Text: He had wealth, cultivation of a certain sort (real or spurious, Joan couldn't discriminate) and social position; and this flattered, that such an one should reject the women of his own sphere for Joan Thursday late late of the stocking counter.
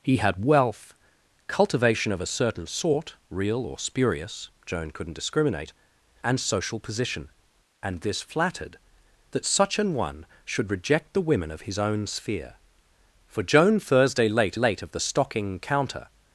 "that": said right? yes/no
yes